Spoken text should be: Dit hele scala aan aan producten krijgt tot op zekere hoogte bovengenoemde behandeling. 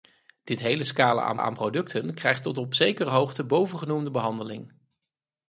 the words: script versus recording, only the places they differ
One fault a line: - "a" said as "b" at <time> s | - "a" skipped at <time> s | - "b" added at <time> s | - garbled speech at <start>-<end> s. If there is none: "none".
none